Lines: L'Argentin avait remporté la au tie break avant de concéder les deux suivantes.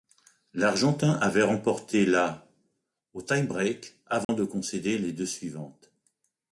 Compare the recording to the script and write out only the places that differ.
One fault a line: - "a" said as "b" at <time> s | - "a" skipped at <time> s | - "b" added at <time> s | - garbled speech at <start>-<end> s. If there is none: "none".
none